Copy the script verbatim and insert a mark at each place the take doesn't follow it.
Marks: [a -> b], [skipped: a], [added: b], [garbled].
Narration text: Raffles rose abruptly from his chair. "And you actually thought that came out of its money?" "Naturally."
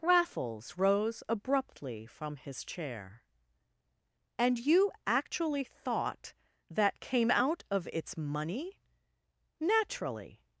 Raffles rose abruptly from his chair. "And you actually thought that came out of its money?" "Naturally."